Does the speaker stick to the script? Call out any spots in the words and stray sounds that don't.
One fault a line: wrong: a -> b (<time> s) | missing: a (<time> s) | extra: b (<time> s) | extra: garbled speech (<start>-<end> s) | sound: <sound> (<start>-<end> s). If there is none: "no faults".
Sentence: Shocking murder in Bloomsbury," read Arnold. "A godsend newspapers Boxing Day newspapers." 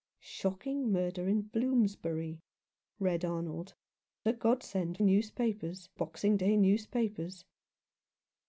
no faults